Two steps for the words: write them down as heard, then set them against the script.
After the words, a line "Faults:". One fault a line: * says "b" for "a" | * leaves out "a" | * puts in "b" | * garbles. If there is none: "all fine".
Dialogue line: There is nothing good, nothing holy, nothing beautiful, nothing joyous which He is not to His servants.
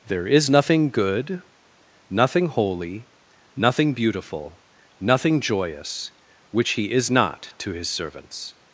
There is nothing good, nothing holy, nothing beautiful, nothing joyous which He is not to His servants.
Faults:
all fine